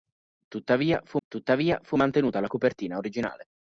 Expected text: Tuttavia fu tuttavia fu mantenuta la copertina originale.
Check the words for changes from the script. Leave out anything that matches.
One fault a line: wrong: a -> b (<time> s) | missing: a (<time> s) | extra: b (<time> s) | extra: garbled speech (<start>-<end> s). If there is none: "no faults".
no faults